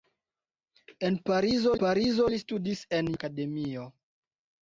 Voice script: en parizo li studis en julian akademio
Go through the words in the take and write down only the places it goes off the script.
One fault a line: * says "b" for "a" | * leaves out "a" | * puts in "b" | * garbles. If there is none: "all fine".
* puts in "parizo"
* leaves out "julian"